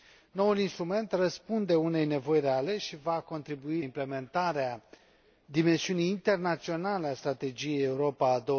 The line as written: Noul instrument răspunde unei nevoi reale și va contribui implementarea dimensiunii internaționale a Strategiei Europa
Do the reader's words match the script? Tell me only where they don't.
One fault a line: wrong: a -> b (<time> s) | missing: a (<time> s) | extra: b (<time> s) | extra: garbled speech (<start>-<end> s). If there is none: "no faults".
no faults